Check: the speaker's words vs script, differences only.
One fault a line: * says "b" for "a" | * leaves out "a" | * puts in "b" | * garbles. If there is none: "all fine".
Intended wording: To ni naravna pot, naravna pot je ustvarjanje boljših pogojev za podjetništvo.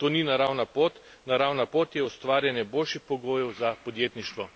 all fine